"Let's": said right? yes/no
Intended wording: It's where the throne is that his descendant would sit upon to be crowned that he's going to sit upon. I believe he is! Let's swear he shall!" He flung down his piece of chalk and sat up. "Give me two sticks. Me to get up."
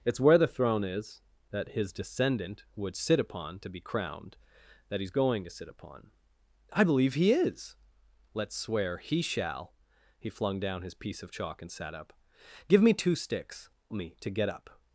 yes